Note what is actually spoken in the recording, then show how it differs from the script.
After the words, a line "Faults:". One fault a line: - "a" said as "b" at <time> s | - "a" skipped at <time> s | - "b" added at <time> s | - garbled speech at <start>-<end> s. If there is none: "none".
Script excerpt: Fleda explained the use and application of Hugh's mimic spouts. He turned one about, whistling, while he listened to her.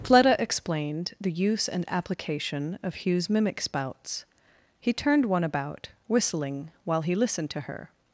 Fleda explained the use and application of Hugh's mimic spouts. He turned one about, whistling, while he listened to her.
Faults:
none